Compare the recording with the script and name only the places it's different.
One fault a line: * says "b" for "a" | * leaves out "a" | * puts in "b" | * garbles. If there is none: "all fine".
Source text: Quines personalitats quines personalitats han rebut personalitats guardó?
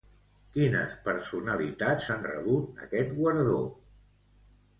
* leaves out "quines personalitats"
* says "aquest" for "personalitats"